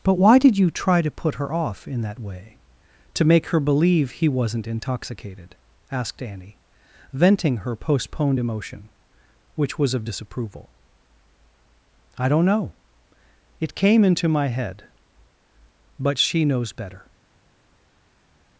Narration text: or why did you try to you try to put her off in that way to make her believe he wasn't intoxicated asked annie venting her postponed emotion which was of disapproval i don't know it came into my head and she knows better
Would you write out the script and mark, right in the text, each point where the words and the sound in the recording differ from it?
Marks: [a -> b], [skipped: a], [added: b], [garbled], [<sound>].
[or -> but] why did you try to [skipped: you try to] put her off in that way to make her believe he wasn't intoxicated asked annie venting her postponed emotion which was of disapproval i don't know it came into my head [and -> but] she knows better